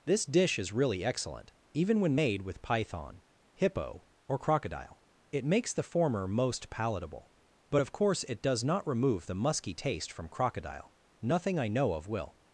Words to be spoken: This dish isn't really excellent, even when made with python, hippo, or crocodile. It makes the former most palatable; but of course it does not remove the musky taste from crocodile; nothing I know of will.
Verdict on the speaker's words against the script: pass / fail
fail